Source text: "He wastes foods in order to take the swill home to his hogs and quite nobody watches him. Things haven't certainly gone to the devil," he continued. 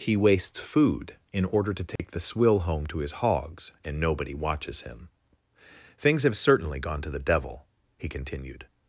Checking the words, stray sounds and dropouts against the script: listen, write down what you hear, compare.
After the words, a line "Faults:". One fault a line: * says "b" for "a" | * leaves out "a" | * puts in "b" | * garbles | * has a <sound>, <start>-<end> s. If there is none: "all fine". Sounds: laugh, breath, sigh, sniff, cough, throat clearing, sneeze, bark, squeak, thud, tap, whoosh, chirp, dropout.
"He wastes food in order to take the swill home to his hogs and nobody watches him. Things have certainly gone to the devil," he continued.
Faults:
* says "food" for "foods"
* has a dropout, 2.0-2.0 s
* leaves out "quite"
* says "have" for "haven't"